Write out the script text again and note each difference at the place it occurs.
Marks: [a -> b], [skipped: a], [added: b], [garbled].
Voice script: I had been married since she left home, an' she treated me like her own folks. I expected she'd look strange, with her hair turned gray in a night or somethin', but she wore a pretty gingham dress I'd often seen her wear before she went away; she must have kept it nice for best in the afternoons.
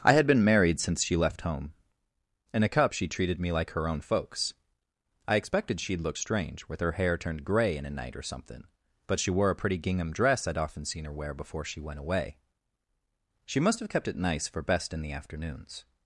I had been married since she left home, [an' -> in a cup] she treated me like her own folks. I expected she'd look strange, with her hair turned gray in a night or [somethin', -> something] but she wore a pretty gingham dress I'd often seen her wear before she went away; she must have kept it nice for best in the afternoons.